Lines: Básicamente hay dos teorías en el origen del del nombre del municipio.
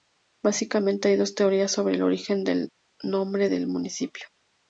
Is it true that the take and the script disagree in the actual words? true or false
true